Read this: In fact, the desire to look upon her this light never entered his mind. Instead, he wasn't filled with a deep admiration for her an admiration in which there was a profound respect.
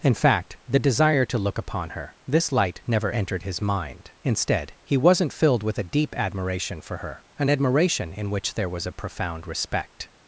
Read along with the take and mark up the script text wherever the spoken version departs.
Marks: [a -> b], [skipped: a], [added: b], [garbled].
In fact, the desire to look upon her this light never entered his mind. Instead, he wasn't filled with a deep admiration for her an admiration in which there was a profound respect.